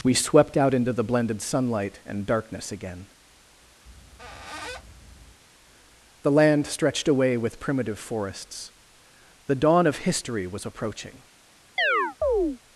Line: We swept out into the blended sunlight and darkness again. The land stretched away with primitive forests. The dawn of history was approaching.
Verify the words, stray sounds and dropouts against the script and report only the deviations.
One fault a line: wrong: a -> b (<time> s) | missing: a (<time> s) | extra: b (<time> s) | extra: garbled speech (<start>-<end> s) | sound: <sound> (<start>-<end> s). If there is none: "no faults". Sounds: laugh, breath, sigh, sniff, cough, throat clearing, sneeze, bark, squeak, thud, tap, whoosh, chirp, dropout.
sound: squeak (3.9-5.4 s)
sound: chirp (11.8-12.6 s)